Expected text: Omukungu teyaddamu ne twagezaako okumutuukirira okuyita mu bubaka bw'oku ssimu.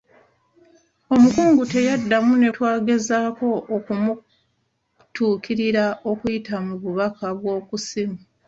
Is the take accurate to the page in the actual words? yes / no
yes